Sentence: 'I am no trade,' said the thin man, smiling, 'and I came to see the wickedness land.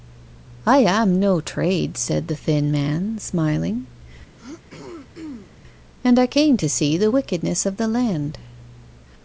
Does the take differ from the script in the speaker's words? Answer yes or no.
yes